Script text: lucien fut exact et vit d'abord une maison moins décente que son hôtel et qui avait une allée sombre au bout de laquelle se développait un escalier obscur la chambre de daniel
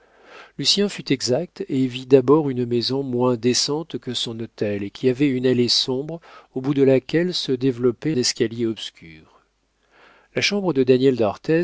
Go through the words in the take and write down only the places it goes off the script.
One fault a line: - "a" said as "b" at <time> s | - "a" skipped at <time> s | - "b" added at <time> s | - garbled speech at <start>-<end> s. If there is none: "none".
- "un" skipped at 8.2 s